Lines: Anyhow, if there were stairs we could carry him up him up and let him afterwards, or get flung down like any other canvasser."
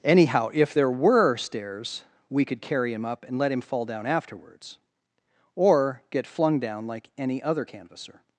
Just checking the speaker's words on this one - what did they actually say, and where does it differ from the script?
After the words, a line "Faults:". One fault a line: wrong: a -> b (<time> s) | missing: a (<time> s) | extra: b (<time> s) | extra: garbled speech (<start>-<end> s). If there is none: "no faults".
Anyhow, if there were stairs we could carry him up and let him fall down afterwards, or get flung down like any other canvasser."
Faults:
missing: him up (3.3 s)
extra: fall down (3.6 s)